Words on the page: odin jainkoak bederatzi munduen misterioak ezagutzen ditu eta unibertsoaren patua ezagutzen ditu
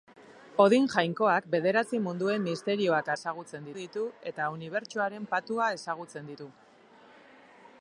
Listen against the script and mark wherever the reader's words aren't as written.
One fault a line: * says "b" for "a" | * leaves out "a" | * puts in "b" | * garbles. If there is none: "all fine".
all fine